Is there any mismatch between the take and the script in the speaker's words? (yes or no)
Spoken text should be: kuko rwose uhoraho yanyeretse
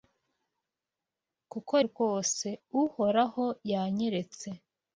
no